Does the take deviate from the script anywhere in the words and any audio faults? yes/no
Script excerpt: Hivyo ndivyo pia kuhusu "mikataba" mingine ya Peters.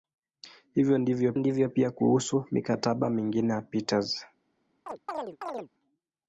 yes